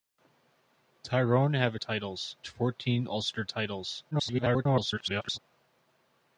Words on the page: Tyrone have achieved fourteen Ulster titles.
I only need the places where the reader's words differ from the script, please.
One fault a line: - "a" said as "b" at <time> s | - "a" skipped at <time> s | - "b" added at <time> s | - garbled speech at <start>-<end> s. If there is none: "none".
- "achieved" said as "titles" at 1.7 s
- garbled speech at 4.1-5.4 s